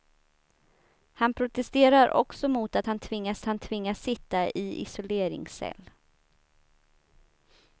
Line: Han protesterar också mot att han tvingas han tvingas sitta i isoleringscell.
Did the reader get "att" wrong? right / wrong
right